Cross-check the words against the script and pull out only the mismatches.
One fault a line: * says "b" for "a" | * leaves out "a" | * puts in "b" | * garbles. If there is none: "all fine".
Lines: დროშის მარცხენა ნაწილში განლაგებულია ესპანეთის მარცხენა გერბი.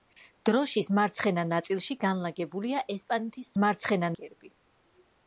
all fine